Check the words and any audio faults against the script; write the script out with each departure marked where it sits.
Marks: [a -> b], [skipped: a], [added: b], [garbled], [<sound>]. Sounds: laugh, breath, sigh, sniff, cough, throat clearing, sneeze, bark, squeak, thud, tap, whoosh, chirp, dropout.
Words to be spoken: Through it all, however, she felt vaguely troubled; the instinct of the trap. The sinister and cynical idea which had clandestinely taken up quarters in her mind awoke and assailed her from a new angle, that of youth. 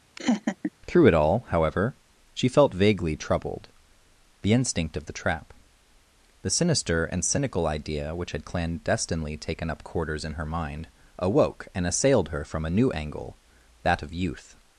[laugh] Through it all, however, she felt vaguely troubled; the instinct of the trap. The sinister and cynical idea which had clandestinely taken up quarters in her mind awoke and assailed her from a new angle, that of youth.